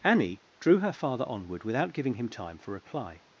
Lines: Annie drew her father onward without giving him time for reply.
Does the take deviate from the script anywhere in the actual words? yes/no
no